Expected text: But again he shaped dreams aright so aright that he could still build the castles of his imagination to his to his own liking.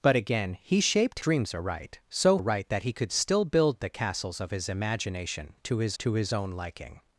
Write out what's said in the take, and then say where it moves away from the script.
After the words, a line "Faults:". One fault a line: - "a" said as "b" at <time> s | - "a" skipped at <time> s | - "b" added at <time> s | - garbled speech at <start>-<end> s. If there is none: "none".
But again he shaped dreams aright so aright that he could still build the castles of his imagination to his to his own liking.
Faults:
none